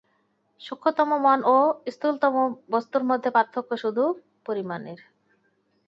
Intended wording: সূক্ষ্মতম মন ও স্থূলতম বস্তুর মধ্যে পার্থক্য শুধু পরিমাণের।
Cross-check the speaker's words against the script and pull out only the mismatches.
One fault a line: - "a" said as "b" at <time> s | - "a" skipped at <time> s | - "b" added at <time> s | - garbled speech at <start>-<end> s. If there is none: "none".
none